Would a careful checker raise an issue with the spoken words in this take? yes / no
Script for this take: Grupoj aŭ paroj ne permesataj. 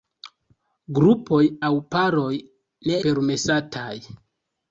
no